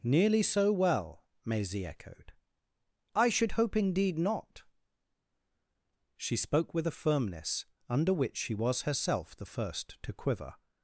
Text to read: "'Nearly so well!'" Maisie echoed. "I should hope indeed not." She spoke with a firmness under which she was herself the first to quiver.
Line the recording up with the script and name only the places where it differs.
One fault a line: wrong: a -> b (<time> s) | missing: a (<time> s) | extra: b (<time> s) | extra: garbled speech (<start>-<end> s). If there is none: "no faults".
no faults